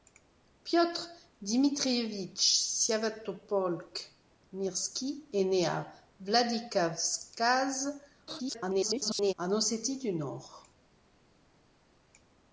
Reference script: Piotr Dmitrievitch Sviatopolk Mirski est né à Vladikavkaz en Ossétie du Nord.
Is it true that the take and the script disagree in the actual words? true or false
true